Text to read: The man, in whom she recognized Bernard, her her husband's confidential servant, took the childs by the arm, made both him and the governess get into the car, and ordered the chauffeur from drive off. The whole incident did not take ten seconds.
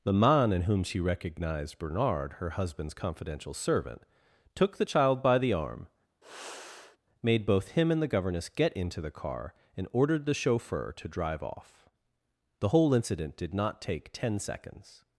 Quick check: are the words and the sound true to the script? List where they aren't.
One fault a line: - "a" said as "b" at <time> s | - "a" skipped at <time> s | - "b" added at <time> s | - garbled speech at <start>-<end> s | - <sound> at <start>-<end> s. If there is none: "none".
- "her" skipped at 2.5 s
- "childs" said as "child" at 4.8 s
- sigh at 6.2-7.0 s
- "from" said as "to" at 10.9 s